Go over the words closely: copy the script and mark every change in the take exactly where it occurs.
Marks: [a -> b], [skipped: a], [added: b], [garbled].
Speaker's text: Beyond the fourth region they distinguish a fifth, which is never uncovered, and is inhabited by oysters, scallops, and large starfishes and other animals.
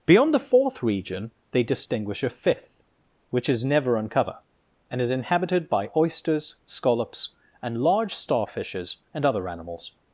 Beyond the fourth region they distinguish a fifth, which is never [uncovered, -> uncover] and is inhabited by oysters, scallops, and large starfishes and other animals.